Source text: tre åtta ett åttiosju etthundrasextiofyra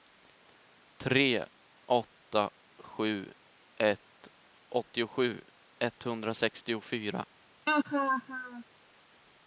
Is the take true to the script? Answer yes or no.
no